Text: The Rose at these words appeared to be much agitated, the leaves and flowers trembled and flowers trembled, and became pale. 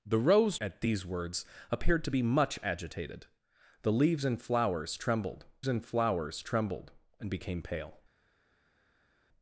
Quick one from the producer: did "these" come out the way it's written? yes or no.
yes